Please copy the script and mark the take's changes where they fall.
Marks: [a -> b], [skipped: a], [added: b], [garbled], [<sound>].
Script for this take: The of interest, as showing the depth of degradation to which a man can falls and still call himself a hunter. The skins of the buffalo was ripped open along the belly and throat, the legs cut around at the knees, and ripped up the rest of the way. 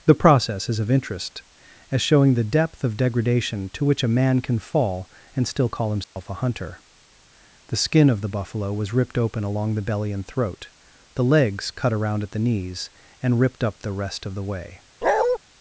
The [added: process is] of interest, as showing the depth of degradation to which a man can [falls -> fall] and still call himself [dropout] a hunter. The [skins -> skin] of the buffalo was ripped open along the belly and throat, the legs cut around at the knees, and ripped up the rest of the way. [bark]